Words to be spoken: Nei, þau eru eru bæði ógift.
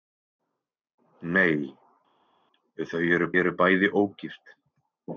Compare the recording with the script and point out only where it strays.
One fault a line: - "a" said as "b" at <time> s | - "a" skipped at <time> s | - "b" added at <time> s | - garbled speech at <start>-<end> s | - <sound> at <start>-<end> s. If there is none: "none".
none